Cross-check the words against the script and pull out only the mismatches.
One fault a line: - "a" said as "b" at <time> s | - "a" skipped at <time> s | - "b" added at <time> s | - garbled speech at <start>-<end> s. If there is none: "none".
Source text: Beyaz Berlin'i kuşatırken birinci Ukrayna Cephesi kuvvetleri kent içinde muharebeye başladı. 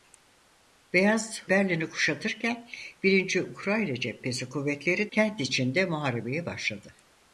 none